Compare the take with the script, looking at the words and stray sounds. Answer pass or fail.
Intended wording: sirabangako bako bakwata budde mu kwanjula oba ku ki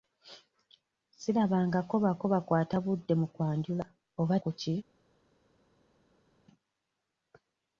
pass